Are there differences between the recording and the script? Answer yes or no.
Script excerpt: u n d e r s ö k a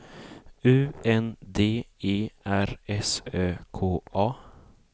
no